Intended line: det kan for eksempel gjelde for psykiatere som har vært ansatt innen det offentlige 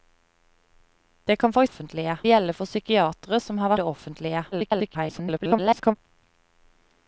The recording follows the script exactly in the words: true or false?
false